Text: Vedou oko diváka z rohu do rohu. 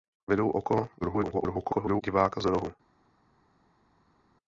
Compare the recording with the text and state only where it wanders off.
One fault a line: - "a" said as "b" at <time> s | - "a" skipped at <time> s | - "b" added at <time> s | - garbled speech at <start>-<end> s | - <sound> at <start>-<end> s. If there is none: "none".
- garbled speech at 1.0-2.0 s
- "rohu" skipped at 2.5 s